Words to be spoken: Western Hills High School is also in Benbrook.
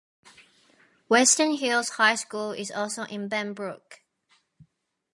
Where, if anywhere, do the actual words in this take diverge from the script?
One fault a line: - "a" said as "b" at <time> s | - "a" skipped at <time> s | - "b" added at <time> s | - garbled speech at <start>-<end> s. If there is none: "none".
none